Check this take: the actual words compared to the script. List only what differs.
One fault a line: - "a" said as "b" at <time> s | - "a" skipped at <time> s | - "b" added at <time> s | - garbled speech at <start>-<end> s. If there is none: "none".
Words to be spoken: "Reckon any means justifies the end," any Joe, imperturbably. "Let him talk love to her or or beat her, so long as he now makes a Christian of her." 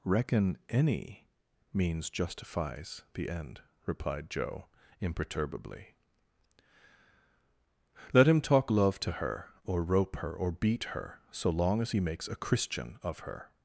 - "any" said as "replied" at 3.9 s
- "rope her" added at 9.8 s
- "now" skipped at 12.0 s